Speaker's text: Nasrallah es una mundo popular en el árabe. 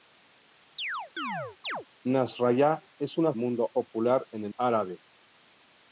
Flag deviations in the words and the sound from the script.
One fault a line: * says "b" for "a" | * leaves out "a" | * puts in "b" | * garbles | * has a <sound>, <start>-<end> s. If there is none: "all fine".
* has a chirp, 0.8-1.9 s